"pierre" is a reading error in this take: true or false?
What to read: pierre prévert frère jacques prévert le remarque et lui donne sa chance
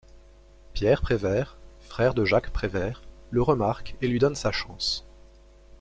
false